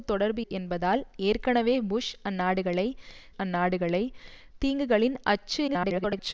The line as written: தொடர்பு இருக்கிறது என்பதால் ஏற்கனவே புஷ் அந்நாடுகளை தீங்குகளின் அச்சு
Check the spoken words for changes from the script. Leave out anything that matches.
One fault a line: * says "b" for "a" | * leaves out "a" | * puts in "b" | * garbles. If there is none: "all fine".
* leaves out "இருக்கிறது"
* puts in "அந்நாடுகளை"
* garbles